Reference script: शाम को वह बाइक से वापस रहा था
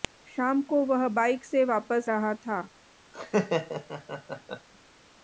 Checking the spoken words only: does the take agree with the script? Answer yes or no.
yes